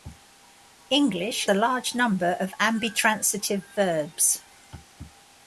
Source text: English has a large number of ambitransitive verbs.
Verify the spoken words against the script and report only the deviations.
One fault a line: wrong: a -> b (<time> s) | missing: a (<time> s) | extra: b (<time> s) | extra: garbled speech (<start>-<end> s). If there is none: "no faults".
missing: has (1.4 s)